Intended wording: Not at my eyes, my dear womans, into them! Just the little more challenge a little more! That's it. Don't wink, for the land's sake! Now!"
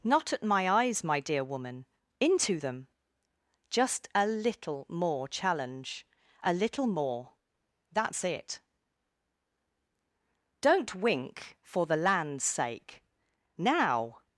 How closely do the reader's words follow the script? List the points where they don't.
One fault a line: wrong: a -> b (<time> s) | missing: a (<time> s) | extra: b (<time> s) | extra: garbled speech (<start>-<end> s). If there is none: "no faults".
wrong: womans -> woman (1.4 s)
wrong: the -> a (4.1 s)